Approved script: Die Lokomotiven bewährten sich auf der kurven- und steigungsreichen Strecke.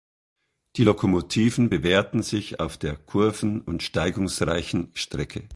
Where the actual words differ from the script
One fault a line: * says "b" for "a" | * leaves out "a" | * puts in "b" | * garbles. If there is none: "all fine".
all fine